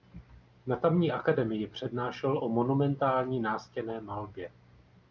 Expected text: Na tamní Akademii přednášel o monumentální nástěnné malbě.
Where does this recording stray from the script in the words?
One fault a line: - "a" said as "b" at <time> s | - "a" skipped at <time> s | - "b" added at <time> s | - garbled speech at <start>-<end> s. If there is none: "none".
none